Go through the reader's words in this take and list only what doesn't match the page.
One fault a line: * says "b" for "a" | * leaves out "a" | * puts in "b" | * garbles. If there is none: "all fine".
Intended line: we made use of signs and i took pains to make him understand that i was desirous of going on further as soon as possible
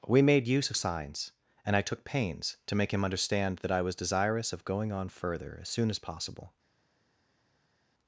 all fine